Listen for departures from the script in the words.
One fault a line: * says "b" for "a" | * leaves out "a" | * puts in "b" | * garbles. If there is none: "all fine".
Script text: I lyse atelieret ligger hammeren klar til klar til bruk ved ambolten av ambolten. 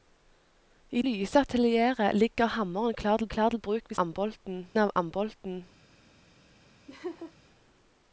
all fine